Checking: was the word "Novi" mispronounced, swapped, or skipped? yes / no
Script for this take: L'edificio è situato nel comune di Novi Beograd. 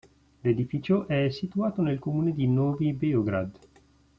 no